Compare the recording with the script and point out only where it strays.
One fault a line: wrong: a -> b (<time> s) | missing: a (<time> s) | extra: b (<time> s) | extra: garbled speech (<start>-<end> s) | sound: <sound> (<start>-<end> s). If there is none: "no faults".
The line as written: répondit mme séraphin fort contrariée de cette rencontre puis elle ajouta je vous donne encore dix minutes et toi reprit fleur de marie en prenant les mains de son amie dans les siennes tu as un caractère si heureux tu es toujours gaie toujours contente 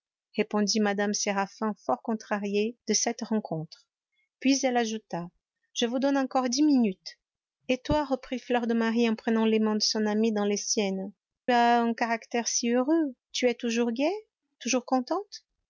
missing: tu (11.1 s)